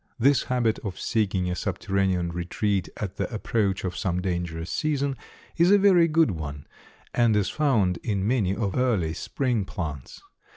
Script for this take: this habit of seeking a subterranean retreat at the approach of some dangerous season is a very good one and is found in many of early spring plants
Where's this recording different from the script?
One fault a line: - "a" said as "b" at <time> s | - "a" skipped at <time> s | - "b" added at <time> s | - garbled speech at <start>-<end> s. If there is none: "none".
none